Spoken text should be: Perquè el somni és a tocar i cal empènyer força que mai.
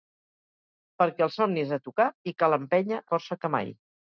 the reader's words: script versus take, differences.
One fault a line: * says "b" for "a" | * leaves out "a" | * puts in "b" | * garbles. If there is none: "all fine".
all fine